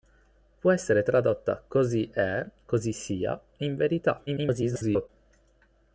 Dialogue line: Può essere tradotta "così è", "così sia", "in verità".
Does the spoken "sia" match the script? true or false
true